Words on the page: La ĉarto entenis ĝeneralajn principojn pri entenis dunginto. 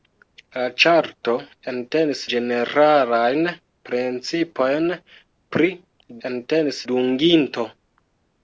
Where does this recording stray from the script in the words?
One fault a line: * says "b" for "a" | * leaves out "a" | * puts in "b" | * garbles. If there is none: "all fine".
all fine